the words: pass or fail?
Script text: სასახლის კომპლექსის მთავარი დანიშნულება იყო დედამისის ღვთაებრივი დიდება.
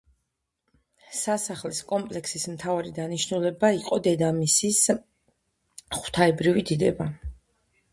pass